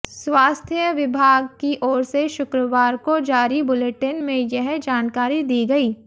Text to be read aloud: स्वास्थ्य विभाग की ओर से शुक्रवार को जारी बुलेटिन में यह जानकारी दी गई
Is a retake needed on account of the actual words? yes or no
no